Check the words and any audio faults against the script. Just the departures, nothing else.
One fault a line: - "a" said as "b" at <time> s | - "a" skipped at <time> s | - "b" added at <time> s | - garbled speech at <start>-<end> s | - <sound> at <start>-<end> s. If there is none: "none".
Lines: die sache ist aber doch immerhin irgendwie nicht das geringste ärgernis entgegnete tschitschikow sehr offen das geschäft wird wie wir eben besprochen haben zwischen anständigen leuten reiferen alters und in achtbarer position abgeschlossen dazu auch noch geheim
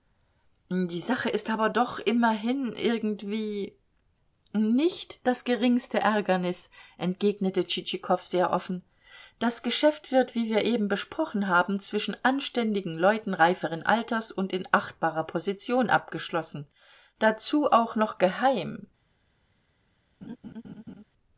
- laugh at 20.2-21.0 s